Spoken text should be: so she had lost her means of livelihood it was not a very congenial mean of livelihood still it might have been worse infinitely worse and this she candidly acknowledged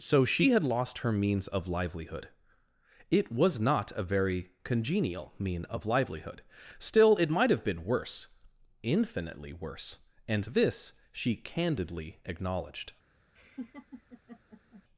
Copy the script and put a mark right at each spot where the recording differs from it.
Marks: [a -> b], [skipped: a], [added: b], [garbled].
so she had lost her means of livelihood it was not a very congenial mean of livelihood still it might have been worse infinitely worse and this she candidly acknowledged